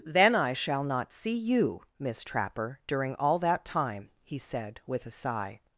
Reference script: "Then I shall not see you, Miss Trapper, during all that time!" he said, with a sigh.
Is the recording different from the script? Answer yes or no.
no